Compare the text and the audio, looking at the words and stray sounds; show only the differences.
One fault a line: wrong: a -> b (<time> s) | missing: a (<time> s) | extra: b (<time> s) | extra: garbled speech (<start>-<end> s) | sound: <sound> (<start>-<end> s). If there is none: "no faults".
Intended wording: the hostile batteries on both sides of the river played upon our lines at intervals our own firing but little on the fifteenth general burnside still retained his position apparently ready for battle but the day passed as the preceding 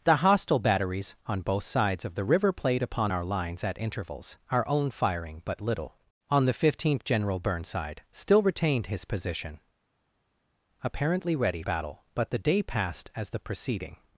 missing: for (11.6 s)